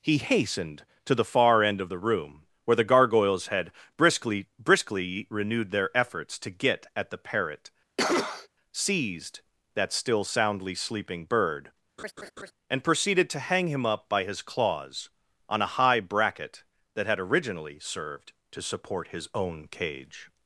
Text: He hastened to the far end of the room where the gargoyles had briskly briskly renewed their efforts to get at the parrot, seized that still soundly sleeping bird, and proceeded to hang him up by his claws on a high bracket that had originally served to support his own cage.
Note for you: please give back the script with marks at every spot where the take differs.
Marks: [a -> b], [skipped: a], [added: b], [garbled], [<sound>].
He hastened to the far end of the room where the gargoyles had briskly briskly renewed their efforts to get at the parrot, [cough] seized that still soundly sleeping bird, [laugh] and proceeded to hang him up by his claws on a high bracket that had originally served to support his own cage.